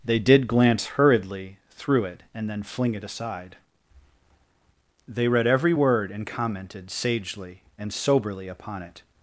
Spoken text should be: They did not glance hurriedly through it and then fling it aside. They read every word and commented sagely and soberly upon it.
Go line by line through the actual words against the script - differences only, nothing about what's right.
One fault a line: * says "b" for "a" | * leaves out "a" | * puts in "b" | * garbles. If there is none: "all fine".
* leaves out "not"